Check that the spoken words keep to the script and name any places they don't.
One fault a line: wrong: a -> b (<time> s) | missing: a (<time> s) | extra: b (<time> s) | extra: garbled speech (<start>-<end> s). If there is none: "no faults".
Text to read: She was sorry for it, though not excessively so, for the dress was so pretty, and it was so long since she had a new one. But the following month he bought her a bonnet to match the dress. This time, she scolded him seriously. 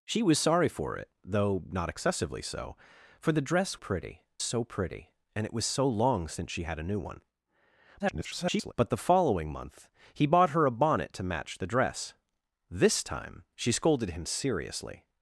wrong: was -> pretty (3.7 s)
extra: garbled speech (8.0-8.7 s)